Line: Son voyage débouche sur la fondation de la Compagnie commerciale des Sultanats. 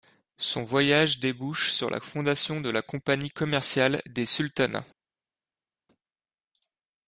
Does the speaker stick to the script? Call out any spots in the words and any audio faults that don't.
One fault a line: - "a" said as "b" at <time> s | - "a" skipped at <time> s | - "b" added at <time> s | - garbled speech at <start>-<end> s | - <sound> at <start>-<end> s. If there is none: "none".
none